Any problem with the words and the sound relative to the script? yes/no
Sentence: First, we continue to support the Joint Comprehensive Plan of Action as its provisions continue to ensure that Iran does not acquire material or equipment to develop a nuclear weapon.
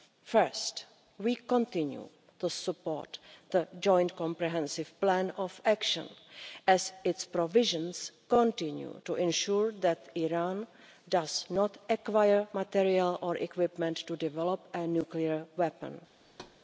yes